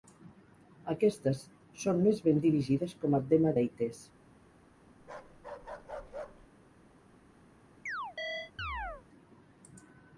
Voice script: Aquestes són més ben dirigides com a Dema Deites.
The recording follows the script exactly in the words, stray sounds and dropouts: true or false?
false